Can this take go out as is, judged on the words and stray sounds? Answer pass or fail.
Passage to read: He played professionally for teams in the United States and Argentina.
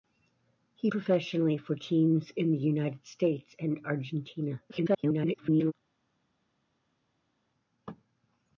fail